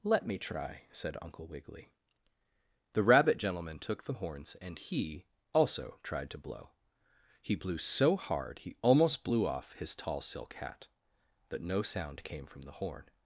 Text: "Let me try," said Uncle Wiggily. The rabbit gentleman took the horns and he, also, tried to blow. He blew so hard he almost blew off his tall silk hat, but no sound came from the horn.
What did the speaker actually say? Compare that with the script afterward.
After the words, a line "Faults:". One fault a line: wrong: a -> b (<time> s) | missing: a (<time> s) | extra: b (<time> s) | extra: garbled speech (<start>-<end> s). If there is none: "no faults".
"Let me try," said Uncle Wiggily. The rabbit gentleman took the horns and he, also, tried to blow. He blew so hard he almost blew off his tall silk hat, but no sound came from the horn.
Faults:
no faults